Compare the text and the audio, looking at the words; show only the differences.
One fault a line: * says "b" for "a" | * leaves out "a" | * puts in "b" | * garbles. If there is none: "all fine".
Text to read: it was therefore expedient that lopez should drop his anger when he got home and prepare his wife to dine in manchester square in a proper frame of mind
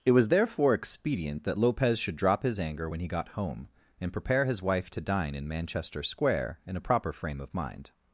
all fine